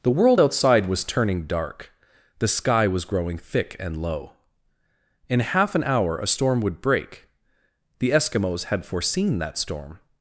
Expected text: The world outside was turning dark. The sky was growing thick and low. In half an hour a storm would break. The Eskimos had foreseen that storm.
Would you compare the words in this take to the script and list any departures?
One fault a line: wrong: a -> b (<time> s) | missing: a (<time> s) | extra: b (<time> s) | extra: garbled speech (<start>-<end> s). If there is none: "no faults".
no faults